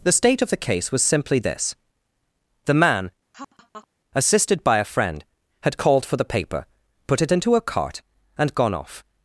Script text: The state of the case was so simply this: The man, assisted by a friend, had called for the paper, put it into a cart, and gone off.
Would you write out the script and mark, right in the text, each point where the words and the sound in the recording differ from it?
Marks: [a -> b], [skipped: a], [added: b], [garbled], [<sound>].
The state of the case was [skipped: so] simply this: The man, [laugh] assisted by a friend, had called for the paper, put it into a cart, and gone off.